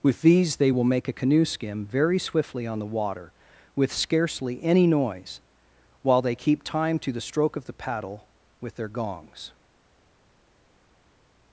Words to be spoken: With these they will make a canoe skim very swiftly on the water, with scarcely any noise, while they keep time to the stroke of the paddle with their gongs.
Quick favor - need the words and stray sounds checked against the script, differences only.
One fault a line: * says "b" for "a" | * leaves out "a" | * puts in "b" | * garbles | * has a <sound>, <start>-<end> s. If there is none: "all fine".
all fine